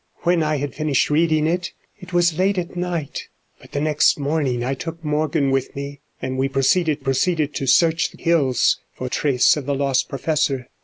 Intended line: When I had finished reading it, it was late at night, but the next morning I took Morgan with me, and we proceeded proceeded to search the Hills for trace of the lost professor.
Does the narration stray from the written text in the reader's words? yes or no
no